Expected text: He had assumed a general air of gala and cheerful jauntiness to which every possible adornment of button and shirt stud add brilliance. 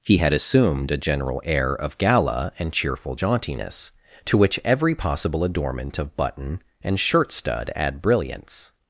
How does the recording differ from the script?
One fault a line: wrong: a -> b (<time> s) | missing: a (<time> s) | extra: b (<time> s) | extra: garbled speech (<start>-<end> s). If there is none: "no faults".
no faults